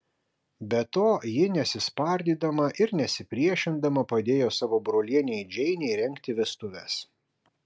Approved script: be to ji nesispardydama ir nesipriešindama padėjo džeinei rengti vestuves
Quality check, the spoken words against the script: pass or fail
fail